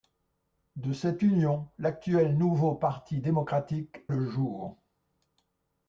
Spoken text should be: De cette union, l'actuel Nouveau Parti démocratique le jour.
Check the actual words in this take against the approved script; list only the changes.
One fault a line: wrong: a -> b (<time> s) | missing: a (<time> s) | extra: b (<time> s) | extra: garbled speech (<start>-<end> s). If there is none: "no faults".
no faults